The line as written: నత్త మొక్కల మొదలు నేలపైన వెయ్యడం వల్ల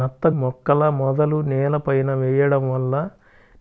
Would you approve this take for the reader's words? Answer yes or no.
yes